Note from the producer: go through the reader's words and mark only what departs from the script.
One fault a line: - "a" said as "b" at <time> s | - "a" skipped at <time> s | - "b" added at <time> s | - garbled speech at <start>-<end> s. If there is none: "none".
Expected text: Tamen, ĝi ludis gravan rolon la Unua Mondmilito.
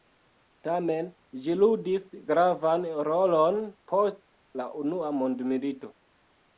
- "post" added at 3.9 s